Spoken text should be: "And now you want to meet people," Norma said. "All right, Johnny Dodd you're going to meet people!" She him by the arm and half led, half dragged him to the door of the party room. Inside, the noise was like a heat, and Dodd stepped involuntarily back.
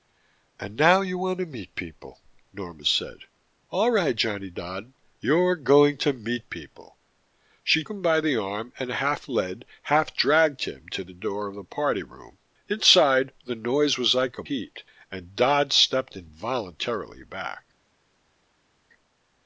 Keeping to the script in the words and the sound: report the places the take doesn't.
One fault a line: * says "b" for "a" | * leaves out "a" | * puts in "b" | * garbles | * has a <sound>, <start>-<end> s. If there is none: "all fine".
all fine